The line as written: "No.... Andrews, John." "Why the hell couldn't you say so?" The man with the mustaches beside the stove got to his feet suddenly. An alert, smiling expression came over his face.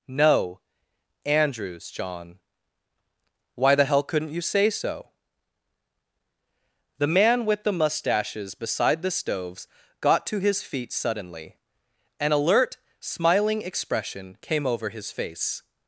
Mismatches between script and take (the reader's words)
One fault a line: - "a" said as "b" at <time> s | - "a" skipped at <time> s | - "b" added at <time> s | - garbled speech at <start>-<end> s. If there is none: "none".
- "stove" said as "stoves" at 9.1 s